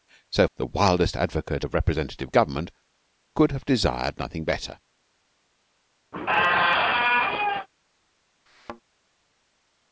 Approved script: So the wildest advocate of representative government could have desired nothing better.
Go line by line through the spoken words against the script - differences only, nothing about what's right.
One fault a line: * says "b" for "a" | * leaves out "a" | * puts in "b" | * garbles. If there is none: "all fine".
all fine